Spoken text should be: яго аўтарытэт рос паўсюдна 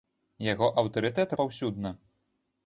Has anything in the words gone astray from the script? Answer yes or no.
yes